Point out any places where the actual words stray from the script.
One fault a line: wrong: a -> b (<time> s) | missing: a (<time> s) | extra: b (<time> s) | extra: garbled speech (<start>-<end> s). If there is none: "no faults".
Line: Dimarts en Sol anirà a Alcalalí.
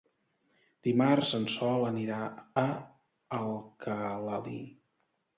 no faults